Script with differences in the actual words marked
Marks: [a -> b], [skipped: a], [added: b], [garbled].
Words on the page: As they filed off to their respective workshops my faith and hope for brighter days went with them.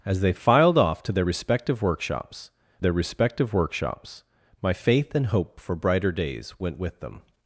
As they filed off to their respective workshops [added: their respective workshops] my faith and hope for brighter days went with them.